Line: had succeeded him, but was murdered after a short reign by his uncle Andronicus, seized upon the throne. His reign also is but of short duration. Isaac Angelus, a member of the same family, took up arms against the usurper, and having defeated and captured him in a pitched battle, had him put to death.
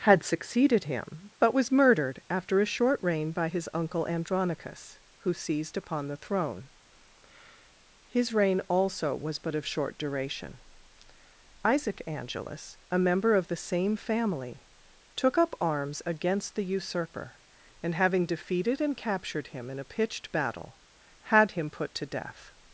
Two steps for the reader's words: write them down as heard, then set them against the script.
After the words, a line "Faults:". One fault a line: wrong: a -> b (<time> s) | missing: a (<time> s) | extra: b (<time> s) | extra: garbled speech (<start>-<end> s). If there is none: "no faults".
had succeeded him, but was murdered after a short reign by his uncle Andronicus, who seized upon the throne. His reign also was but of short duration. Isaac Angelus, a member of the same family, took up arms against the usurper, and having defeated and captured him in a pitched battle, had him put to death.
Faults:
extra: who (5.2 s)
wrong: is -> was (9.1 s)